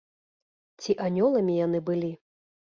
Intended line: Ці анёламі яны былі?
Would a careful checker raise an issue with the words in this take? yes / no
no